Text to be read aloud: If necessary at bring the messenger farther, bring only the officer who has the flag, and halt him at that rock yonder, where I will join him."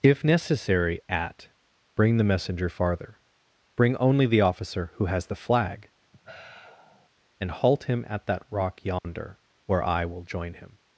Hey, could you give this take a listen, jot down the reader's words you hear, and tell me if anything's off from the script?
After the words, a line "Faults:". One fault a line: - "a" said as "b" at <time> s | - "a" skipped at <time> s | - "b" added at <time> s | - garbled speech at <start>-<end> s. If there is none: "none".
If necessary at bring the messenger farther, bring only the officer who has the flag, and halt him at that rock yonder, where I will join him."
Faults:
none